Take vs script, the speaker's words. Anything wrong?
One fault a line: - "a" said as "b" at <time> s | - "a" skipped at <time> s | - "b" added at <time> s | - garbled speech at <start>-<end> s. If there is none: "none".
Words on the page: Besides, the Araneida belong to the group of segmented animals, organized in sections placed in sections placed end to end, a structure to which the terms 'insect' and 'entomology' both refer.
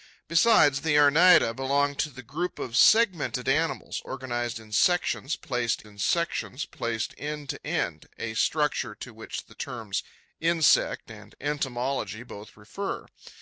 none